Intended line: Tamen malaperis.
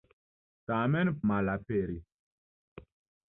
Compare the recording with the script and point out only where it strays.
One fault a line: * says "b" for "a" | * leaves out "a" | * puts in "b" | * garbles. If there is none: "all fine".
all fine